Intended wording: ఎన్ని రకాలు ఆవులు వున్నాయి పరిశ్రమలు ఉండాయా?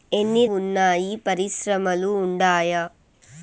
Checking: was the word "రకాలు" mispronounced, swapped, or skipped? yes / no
yes